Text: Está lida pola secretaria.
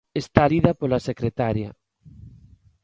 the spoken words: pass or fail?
pass